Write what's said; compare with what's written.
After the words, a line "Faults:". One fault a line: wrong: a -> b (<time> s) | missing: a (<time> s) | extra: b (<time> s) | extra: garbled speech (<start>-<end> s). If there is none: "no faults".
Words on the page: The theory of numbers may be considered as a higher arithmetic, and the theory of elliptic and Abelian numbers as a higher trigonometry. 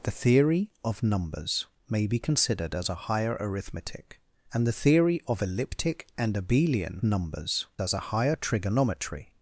The theory of numbers may be considered as a higher arithmetic, and the theory of elliptic and Abelian numbers as a higher trigonometry.
Faults:
no faults